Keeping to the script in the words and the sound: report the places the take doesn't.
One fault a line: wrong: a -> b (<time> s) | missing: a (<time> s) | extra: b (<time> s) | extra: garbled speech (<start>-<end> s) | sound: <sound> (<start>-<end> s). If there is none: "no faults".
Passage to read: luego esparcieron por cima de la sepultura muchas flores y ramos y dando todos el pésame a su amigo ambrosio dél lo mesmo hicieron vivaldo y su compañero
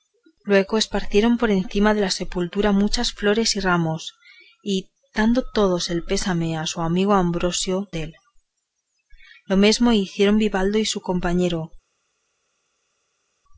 no faults